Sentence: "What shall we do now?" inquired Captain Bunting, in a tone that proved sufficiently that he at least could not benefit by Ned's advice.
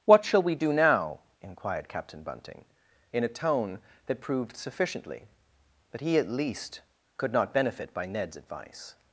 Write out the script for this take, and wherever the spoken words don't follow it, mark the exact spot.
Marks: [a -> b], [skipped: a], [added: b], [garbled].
"What shall we do now?" inquired Captain Bunting, in a tone that proved sufficiently that he at least could not benefit by Ned's advice.